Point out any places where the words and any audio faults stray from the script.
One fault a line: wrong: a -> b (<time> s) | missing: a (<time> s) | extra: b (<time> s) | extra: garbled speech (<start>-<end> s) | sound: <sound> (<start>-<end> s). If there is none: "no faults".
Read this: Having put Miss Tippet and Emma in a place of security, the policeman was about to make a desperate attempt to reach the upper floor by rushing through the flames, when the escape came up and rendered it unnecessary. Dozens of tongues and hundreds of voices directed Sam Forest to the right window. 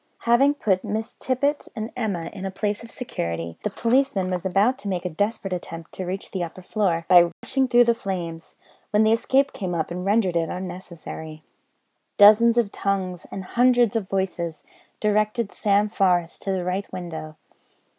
sound: dropout (7.3-7.4 s)